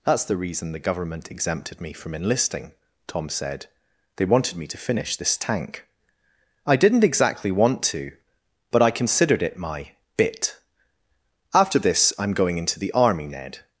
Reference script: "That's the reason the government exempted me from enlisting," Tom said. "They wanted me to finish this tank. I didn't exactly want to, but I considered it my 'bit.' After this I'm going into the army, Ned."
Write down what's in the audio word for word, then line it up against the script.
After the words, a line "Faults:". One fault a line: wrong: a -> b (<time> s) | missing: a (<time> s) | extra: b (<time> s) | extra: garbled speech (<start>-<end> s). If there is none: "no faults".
"That's the reason the government exempted me from enlisting," Tom said. "They wanted me to finish this tank. I didn't exactly want to, but I considered it my 'bit.' After this I'm going into the army, Ned."
Faults:
no faults